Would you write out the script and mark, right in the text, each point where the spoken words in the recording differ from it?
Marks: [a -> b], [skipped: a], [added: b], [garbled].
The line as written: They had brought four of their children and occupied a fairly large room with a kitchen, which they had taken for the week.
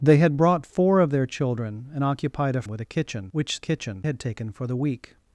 They had brought four of their children and occupied a [skipped: fairly large room] with a kitchen, which [they -> kitchen] had taken for the week.